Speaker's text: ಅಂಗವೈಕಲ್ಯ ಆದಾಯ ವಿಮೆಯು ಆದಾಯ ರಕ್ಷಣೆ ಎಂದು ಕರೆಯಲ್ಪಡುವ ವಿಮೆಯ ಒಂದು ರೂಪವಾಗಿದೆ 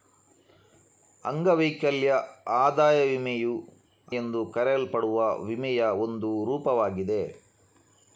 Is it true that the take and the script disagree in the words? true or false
true